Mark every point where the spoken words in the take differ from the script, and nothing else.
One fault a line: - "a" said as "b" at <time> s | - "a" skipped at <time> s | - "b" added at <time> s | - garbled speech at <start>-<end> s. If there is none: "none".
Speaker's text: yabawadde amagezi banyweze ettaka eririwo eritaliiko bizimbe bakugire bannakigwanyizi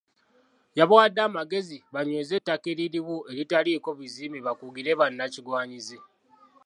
none